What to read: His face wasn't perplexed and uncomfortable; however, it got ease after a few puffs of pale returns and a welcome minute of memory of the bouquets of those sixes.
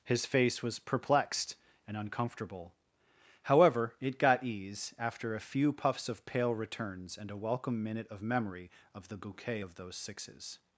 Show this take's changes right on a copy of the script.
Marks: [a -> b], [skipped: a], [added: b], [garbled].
His face [wasn't -> was] perplexed and uncomfortable; however, it got ease after a few puffs of pale returns and a welcome minute of memory of the [bouquets -> bouquet] of those sixes.